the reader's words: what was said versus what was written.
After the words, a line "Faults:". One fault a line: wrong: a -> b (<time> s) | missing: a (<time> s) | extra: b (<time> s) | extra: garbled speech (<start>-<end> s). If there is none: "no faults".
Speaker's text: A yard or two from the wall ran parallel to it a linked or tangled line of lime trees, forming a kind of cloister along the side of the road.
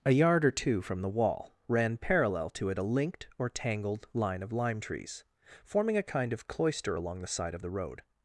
A yard or two from the wall ran parallel to it a linked or tangled line of lime trees, forming a kind of cloister along the side of the road.
Faults:
no faults